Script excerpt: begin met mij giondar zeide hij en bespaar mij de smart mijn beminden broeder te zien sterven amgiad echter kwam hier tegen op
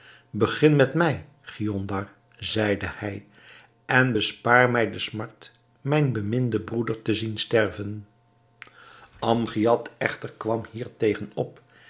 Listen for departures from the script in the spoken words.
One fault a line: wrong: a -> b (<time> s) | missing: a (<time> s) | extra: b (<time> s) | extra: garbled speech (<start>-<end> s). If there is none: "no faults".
no faults